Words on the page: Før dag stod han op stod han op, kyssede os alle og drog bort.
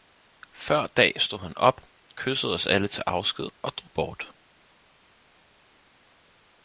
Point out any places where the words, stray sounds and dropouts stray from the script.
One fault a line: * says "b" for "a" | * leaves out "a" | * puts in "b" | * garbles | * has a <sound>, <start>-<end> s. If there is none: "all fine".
* leaves out "stod han op"
* puts in "til afsked"